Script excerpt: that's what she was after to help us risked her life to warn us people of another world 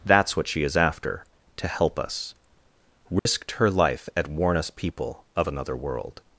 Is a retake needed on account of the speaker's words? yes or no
yes